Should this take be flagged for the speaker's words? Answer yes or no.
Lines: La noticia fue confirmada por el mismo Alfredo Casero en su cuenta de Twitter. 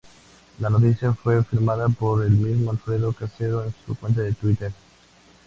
no